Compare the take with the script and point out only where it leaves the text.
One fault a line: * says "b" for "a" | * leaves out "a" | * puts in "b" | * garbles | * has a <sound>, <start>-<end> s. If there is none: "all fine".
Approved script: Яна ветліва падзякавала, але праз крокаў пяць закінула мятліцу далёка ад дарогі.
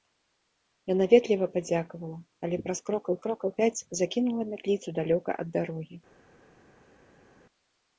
* puts in "крокаў"